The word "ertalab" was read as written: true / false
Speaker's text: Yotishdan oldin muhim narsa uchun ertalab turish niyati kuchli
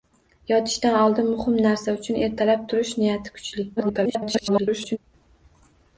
true